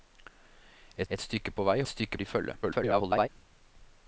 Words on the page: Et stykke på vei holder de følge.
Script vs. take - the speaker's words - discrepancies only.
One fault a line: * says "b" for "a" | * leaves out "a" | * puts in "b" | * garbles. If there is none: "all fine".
* puts in "et"
* says "stykke" for "holder"
* garbles